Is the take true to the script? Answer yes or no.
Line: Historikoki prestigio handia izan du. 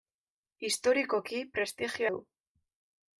no